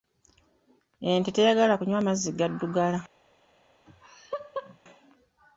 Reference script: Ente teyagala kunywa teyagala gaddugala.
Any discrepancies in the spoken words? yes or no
yes